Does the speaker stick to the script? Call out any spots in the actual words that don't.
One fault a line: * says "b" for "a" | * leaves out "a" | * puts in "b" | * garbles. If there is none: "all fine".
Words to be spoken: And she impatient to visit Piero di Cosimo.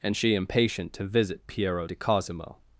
all fine